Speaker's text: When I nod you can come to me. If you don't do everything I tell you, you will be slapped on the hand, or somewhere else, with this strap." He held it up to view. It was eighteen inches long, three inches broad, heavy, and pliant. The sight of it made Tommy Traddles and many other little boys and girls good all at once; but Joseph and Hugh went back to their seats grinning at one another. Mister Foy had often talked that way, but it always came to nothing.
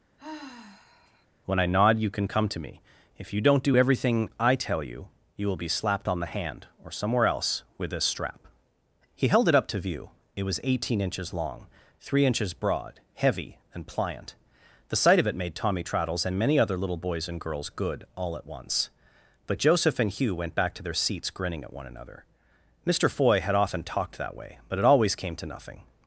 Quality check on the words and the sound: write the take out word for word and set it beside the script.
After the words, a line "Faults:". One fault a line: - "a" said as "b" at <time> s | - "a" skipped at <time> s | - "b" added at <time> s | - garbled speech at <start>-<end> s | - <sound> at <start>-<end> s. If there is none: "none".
When I nod you can come to me. If you don't do everything I tell you, you will be slapped on the hand, or somewhere else, with this strap." He held it up to view. It was eighteen inches long, three inches broad, heavy, and pliant. The sight of it made Tommy Traddles and many other little boys and girls good all at once; but Joseph and Hugh went back to their seats grinning at one another. Mister Foy had often talked that way, but it always came to nothing.
Faults:
- sigh at 0.2-1.3 s